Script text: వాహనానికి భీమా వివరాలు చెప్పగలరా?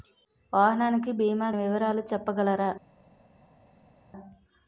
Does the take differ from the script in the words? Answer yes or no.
no